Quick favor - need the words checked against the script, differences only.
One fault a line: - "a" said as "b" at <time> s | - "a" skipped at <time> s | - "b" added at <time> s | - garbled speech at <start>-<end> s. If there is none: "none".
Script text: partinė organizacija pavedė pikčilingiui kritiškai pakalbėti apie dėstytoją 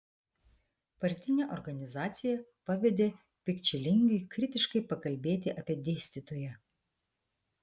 none